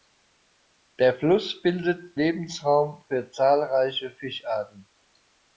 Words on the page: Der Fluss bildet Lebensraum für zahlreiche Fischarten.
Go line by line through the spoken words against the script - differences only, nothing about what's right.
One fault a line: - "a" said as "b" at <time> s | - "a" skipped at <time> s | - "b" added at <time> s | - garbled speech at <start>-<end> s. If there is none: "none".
none